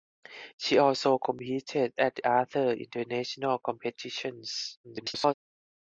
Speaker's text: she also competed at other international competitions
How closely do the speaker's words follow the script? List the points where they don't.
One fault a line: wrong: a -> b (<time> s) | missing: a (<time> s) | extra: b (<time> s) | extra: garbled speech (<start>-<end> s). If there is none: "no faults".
extra: garbled speech (4.8-5.3 s)